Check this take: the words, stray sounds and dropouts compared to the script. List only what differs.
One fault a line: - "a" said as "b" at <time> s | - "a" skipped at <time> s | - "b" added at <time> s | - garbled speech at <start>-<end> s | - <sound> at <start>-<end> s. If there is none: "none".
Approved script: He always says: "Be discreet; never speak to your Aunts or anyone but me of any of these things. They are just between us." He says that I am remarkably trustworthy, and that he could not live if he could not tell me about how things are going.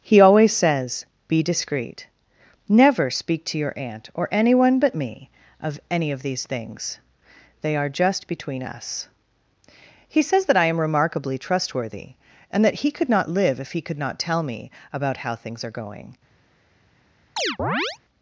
- "Aunts" said as "Aunt" at 3.8 s
- chirp at 17.4-18.0 s